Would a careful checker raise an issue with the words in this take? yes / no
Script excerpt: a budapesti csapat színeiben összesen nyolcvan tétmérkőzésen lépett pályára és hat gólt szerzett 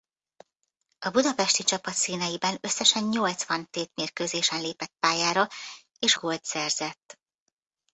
yes